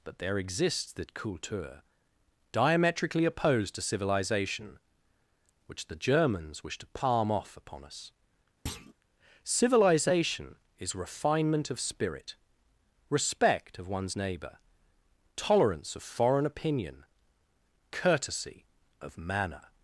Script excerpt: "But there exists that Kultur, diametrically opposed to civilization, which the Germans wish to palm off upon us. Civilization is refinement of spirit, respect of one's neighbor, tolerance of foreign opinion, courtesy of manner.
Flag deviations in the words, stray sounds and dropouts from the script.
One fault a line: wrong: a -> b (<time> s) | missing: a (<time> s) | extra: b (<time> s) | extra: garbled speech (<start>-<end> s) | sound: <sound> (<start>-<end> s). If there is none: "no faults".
sound: thud (8.7-8.9 s)